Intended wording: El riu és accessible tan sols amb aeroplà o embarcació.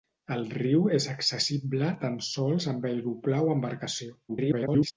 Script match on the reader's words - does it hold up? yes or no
no